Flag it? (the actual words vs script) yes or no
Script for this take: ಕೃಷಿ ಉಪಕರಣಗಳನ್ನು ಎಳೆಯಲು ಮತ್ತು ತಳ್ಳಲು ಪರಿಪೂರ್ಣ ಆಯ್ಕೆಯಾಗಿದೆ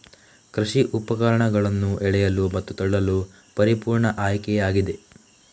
no